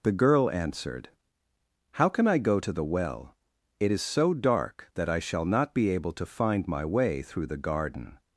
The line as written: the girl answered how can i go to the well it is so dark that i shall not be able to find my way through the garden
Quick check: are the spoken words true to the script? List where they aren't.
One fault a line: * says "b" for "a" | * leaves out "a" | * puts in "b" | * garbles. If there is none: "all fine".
all fine